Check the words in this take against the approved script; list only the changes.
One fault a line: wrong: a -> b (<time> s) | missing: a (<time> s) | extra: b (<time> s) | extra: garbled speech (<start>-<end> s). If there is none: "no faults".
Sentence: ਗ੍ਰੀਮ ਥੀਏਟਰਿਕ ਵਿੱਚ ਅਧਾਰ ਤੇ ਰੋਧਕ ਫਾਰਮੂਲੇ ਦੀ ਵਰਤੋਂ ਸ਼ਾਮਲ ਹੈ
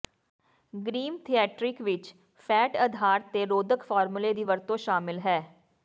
extra: ਫੈਟ (2.5 s)